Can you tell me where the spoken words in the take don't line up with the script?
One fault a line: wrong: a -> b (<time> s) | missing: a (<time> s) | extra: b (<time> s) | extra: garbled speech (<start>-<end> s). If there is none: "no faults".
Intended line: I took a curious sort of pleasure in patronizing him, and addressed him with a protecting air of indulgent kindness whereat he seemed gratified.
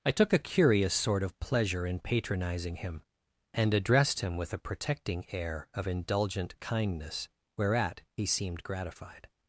no faults